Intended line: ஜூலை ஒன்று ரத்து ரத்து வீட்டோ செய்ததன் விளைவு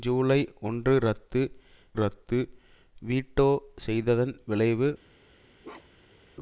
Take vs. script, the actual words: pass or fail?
pass